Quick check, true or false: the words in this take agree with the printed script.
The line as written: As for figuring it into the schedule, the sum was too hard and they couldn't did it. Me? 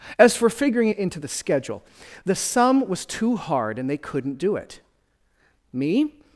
false